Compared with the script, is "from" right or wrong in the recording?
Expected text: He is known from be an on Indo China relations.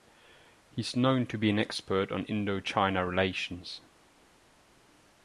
wrong